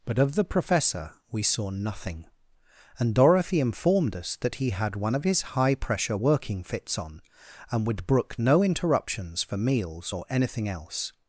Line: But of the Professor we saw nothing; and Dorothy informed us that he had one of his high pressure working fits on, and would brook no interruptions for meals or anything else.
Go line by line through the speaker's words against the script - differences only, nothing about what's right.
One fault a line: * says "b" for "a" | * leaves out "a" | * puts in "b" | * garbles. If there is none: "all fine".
all fine